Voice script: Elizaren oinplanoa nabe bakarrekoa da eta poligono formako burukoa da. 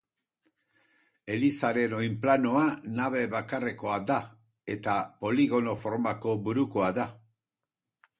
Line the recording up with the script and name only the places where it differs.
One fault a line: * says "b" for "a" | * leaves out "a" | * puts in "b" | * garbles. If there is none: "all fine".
all fine